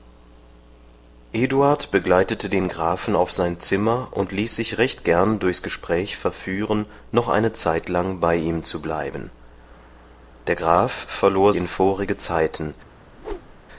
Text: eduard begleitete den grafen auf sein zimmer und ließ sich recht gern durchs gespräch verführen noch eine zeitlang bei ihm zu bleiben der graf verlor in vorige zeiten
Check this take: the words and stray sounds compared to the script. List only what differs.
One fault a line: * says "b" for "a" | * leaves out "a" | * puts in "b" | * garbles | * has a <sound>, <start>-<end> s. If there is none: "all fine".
* has a whoosh, 13.1-13.7 s